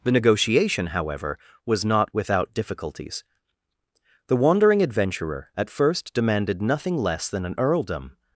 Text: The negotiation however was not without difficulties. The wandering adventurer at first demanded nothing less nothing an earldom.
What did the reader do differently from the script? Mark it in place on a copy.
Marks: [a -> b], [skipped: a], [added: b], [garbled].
The negotiation however was not without difficulties. The wandering adventurer at first demanded nothing less [nothing -> than] an earldom.